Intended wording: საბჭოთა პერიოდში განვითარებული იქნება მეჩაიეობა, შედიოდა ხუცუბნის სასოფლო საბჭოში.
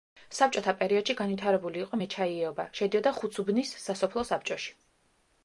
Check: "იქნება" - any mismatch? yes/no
yes